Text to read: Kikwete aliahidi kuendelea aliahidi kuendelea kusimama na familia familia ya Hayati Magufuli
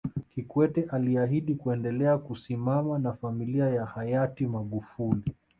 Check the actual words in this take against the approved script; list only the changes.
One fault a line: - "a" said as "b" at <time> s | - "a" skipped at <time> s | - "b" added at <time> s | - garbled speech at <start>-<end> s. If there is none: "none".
- "aliahidi kuendelea" skipped at 2.2 s
- "familia" skipped at 3.7 s